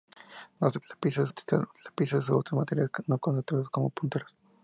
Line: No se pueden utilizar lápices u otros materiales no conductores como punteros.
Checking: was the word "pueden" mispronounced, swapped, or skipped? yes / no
yes